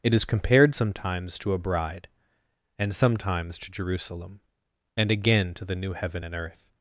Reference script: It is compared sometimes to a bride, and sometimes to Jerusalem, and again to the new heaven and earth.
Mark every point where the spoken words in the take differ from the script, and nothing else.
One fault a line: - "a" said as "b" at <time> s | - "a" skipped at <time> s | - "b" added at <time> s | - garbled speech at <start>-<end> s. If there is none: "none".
none